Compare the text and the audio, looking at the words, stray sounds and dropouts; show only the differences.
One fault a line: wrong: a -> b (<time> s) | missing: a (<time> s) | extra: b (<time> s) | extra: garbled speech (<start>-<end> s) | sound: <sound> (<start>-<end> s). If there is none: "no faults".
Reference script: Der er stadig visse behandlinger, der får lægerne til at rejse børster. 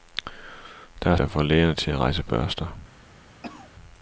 missing: stadig visse behandlinger (1.2 s)
sound: cough (3.4-3.7 s)